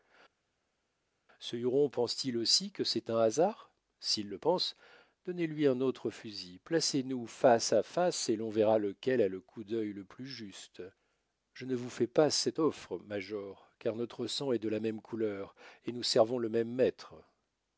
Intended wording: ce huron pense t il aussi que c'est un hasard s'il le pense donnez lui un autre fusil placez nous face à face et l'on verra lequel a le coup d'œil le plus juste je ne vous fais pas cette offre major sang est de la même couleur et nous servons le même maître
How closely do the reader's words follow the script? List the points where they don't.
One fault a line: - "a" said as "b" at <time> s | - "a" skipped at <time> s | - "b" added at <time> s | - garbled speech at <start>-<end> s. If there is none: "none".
- "car notre" added at 13.8 s